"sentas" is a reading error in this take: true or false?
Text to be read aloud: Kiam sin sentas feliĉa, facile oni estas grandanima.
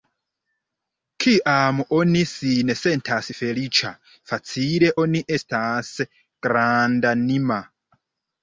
false